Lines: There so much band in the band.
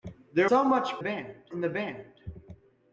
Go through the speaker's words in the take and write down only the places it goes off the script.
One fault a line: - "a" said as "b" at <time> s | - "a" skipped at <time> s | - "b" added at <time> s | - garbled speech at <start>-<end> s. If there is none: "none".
none